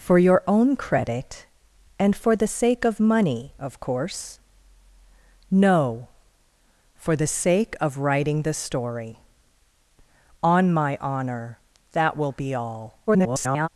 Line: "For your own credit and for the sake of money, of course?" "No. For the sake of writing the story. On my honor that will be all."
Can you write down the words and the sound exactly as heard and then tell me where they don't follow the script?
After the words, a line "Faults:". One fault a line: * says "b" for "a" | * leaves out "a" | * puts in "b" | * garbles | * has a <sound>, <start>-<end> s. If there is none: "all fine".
"For your own credit and for the sake of money, of course?" "No. For the sake of writing the story. On my honor that will be all." [garbled]
Faults:
* garbles